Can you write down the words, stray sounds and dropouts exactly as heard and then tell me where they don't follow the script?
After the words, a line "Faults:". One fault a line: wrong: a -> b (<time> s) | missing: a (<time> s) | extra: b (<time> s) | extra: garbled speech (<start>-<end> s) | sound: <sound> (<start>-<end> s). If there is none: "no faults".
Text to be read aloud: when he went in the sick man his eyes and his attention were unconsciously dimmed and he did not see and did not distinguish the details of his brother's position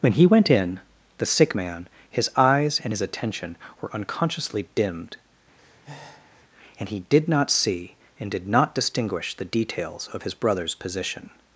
when he went in the sick man his eyes and his attention were unconsciously dimmed and he did not see and did not distinguish the details of his brother's position
Faults:
sound: breath (5.6-6.4 s)